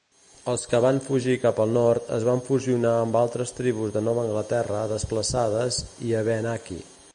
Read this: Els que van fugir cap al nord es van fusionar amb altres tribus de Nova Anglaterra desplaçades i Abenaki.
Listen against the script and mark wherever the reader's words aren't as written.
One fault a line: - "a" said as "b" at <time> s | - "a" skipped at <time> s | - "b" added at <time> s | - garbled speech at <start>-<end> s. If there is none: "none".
none